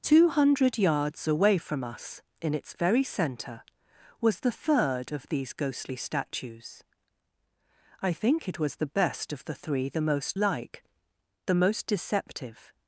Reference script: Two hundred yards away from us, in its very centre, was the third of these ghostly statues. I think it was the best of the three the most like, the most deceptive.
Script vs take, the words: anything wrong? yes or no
no